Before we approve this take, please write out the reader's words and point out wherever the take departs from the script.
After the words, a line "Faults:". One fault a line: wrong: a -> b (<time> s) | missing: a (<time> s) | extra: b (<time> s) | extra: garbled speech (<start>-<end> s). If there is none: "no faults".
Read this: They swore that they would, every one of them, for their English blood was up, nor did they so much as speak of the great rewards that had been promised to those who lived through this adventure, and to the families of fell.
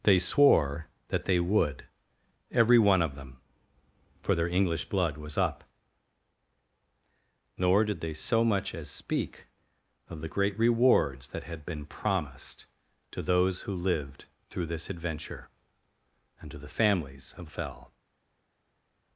They swore that they would, every one of them, for their English blood was up, nor did they so much as speak of the great rewards that had been promised to those who lived through this adventure, and to the families of fell.
Faults:
no faults